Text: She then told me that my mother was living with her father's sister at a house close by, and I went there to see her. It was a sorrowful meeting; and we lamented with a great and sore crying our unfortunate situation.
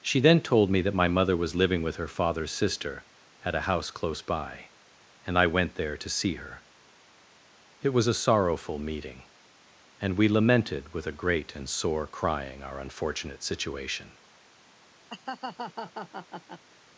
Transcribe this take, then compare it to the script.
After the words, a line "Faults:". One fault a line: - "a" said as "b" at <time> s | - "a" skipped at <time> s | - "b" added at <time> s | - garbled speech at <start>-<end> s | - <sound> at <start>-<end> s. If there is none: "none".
She then told me that my mother was living with her father's sister at a house close by, and I went there to see her. It was a sorrowful meeting; and we lamented with a great and sore crying our unfortunate situation.
Faults:
- laugh at 15.1-16.6 s